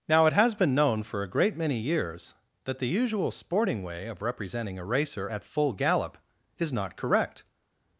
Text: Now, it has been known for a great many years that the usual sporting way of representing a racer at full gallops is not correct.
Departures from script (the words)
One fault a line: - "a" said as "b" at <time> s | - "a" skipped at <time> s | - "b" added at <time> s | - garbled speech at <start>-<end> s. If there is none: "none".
- "gallops" said as "gallop" at 5.7 s